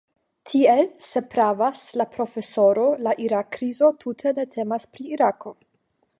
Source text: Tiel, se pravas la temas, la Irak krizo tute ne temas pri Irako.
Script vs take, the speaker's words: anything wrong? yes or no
yes